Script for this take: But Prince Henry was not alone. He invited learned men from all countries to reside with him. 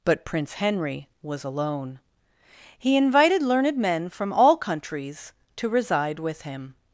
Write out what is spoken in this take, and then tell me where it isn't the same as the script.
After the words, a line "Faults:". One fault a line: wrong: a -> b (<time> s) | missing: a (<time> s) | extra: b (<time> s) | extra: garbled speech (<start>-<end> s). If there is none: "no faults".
But Prince Henry was alone. He invited learned men from all countries to reside with him.
Faults:
missing: not (1.4 s)